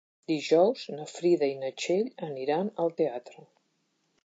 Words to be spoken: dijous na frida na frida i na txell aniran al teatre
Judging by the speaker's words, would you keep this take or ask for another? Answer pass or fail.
fail